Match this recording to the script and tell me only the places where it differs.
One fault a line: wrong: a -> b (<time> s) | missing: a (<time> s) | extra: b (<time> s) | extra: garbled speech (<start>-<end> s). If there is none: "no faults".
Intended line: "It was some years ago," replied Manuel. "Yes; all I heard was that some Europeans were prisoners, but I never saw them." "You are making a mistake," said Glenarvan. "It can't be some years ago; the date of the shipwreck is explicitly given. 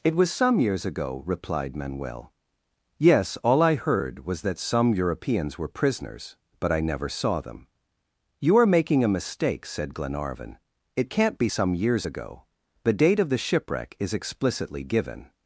no faults